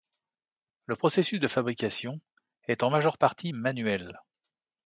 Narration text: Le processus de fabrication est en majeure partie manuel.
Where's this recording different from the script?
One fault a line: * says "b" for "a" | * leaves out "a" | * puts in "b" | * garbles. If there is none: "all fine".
all fine